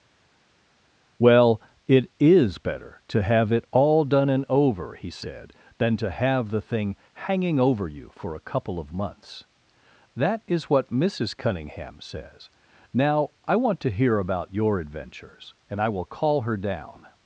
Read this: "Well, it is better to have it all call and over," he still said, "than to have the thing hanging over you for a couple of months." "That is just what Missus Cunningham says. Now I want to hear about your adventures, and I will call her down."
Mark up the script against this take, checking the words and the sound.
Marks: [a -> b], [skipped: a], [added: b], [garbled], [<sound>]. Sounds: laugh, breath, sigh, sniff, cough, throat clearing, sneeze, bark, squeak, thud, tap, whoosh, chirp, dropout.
"Well, it is better to have it all [call -> done] and over," he [skipped: still] said, "than to have the thing hanging over you for a couple of months." "That is [skipped: just] what Missus Cunningham says. Now I want to hear about your adventures, and I will call her down."